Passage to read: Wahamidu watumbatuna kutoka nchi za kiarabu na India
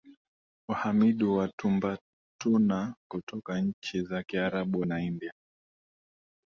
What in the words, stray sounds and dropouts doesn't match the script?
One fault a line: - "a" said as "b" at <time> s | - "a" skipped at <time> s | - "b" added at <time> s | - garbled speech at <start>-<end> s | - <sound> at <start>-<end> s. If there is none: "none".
none